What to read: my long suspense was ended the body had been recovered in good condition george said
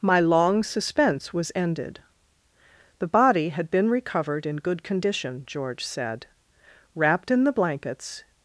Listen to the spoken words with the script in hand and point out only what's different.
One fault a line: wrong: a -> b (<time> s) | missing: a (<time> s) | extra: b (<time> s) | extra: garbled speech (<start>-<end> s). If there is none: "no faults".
extra: wrapped in the blankets (6.9 s)